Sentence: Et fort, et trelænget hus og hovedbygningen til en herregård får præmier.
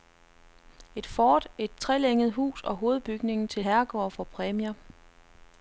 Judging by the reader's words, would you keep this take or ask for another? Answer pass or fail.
fail